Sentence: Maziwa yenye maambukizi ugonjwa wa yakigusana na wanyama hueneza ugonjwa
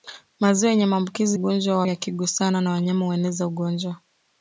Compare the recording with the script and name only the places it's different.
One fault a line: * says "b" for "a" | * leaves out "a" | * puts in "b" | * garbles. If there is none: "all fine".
all fine